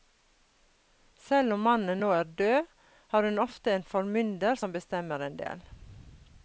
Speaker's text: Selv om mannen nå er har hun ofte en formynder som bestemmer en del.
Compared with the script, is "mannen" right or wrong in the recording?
right